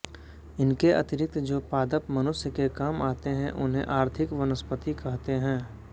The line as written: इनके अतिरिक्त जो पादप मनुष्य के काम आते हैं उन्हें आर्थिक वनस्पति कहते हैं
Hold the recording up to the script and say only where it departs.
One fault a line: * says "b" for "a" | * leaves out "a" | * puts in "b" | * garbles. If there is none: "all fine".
all fine